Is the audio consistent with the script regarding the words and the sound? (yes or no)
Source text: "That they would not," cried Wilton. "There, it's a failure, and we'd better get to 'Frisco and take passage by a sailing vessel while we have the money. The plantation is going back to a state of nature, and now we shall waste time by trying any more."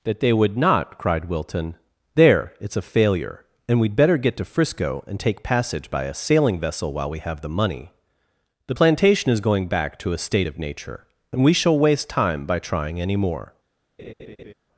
no